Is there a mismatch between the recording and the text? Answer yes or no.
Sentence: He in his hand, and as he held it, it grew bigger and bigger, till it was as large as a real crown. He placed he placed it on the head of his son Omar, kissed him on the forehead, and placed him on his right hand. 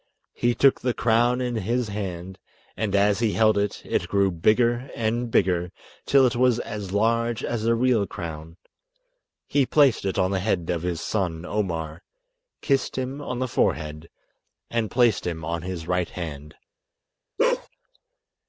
yes